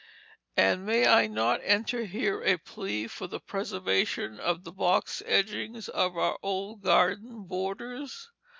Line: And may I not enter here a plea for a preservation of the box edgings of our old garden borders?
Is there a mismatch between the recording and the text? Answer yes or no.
yes